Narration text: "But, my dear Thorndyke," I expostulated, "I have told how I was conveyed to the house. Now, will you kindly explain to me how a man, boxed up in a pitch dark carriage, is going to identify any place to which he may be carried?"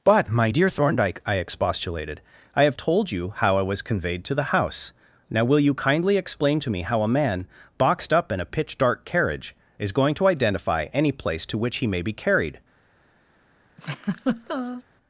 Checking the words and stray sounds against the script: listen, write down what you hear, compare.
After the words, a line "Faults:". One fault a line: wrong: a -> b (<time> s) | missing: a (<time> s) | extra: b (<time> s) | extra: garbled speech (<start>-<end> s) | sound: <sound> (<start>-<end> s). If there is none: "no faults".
"But, my dear Thorndyke," I expostulated, "I have told you how I was conveyed to the house. Now, will you kindly explain to me how a man, boxed up in a pitch dark carriage, is going to identify any place to which he may be carried?"
Faults:
extra: you (3.1 s)
sound: laugh (13.8-14.8 s)